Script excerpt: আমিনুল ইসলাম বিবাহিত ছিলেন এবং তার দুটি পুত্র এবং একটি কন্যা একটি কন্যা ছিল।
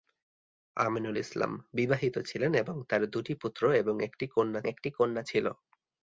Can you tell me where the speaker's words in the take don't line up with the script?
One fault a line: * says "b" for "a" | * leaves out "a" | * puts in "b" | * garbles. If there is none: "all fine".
all fine